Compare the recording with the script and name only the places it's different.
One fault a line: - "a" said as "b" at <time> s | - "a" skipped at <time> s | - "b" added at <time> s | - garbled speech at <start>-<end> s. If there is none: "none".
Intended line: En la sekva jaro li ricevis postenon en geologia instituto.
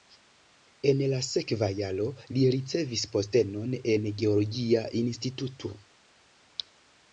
none